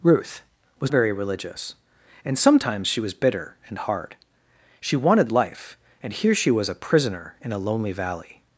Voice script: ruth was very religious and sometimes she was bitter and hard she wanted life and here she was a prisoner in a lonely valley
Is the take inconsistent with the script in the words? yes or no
no